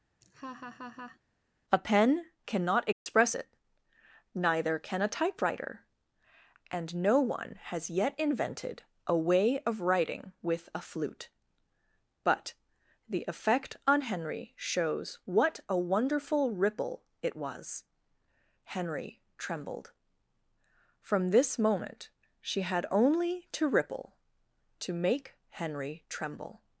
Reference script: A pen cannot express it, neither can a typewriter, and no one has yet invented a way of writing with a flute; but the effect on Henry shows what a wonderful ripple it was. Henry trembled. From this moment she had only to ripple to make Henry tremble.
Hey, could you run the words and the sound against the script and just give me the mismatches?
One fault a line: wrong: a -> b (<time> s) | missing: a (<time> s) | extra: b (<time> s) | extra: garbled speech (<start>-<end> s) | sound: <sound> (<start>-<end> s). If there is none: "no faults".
sound: laugh (0.2-1.2 s)
sound: dropout (2.9-3.1 s)